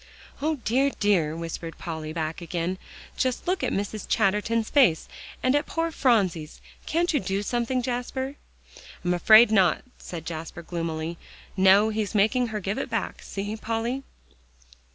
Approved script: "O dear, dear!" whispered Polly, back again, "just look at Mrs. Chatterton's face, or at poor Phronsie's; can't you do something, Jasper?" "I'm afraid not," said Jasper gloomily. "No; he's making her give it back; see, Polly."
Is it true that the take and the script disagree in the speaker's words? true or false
true